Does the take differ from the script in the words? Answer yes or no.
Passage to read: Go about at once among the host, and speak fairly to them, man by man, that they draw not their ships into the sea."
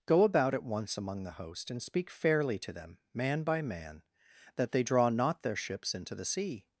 no